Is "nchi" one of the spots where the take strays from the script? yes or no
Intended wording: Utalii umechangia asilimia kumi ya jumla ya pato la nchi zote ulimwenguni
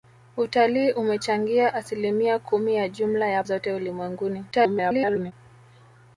yes